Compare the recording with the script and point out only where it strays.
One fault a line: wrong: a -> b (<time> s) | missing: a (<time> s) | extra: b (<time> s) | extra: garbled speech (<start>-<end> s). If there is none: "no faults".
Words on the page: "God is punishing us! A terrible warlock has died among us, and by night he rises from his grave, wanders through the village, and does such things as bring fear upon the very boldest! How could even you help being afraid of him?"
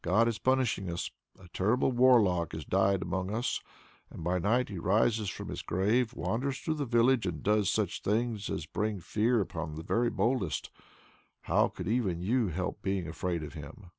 no faults